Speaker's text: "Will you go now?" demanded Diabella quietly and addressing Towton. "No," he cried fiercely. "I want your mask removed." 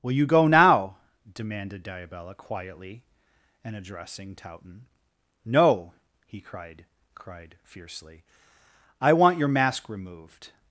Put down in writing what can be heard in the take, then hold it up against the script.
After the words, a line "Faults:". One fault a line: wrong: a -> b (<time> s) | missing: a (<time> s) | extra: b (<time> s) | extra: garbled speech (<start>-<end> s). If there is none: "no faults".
"Will you go now?" demanded Diabella quietly and addressing Towton. "No," he cried cried fiercely. "I want your mask removed."
Faults:
extra: cried (7.1 s)